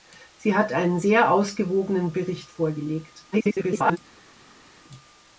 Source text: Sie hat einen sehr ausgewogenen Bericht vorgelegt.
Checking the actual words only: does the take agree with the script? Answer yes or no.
no